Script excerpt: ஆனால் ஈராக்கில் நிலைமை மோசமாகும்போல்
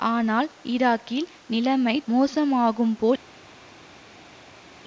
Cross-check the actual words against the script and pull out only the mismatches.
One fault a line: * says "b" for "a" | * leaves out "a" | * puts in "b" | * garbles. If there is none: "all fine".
all fine